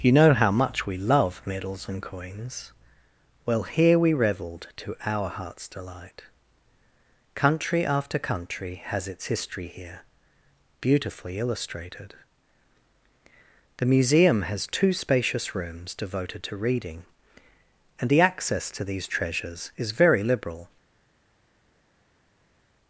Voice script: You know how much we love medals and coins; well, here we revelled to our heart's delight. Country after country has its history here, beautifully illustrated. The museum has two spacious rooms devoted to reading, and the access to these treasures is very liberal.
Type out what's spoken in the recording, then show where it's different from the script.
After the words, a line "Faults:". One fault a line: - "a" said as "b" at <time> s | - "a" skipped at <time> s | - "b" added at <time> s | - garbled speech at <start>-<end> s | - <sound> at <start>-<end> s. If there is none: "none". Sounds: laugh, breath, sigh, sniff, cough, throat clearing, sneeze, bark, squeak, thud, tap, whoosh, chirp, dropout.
You know how much we love medals and coins; well, here we revelled to our heart's delight. Country after country has its history here, beautifully illustrated. The museum has two spacious rooms devoted to reading, and the access to these treasures is very liberal.
Faults:
none